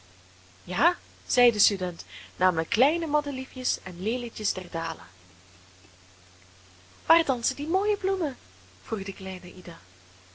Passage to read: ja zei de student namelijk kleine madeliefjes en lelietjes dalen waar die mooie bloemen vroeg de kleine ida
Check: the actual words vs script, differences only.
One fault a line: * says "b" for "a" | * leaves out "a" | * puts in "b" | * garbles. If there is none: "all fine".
* puts in "der"
* puts in "dansen"